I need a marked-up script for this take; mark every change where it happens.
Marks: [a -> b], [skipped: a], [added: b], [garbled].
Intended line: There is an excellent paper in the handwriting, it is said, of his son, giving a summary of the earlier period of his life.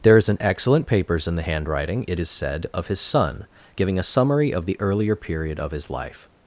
There is an excellent [paper -> papers] in the handwriting, it is said, of his son, giving a summary of the earlier period of his life.